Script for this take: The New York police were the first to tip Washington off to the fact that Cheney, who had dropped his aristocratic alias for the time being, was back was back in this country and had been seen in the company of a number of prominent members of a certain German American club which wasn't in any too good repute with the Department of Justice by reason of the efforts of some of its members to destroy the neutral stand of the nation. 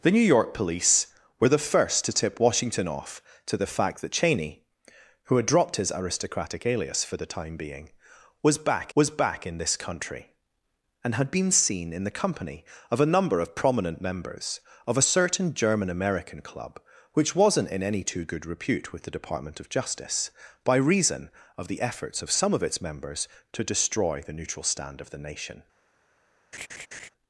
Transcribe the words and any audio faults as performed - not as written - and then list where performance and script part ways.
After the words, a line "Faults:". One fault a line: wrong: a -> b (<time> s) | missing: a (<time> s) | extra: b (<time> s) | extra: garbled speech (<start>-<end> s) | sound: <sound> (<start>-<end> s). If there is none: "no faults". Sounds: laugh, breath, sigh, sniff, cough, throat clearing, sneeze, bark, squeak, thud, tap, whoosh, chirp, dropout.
The New York police were the first to tip Washington off to the fact that Cheney, who had dropped his aristocratic alias for the time being, was back was back in this country and had been seen in the company of a number of prominent members of a certain German American club which wasn't in any too good repute with the Department of Justice by reason of the efforts of some of its members to destroy the neutral stand of the nation.
Faults:
sound: laugh (26.5-27.1 s)